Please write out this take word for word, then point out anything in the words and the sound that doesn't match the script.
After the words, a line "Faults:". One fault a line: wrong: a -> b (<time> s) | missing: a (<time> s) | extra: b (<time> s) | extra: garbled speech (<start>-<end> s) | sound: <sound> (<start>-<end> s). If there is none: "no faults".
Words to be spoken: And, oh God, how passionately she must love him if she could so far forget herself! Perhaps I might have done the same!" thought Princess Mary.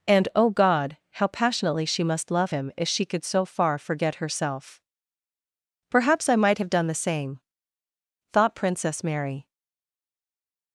And, oh God, how passionately she must love him if she could so far forget herself! Perhaps I might have done the same!" thought Princess Mary.
Faults:
no faults